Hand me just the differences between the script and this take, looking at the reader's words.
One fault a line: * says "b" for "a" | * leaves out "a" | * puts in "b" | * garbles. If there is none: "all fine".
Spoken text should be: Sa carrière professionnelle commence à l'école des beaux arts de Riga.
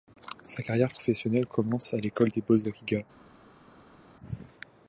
* leaves out "arts"